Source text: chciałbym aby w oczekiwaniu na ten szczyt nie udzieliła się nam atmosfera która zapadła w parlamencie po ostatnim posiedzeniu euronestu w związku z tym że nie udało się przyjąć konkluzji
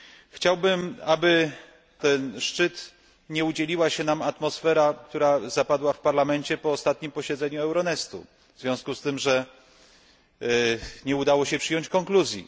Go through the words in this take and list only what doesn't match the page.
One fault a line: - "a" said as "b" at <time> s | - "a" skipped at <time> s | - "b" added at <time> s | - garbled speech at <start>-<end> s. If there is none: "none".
- "w oczekiwaniu na" skipped at 1.5 s